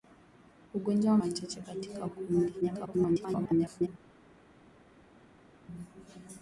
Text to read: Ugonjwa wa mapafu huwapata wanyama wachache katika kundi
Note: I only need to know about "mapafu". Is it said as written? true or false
false